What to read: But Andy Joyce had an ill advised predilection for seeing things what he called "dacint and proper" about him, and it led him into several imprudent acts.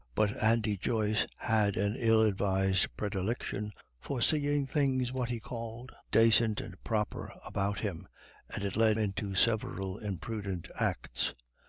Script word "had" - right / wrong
right